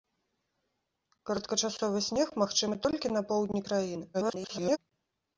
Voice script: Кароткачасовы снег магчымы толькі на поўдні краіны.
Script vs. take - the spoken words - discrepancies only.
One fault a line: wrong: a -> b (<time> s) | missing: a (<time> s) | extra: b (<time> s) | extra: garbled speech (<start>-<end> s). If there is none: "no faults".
extra: garbled speech (4.1-4.8 s)